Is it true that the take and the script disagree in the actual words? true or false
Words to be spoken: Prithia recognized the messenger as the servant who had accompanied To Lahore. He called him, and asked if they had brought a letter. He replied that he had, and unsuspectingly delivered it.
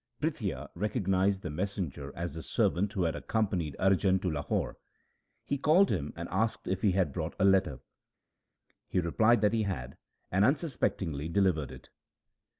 true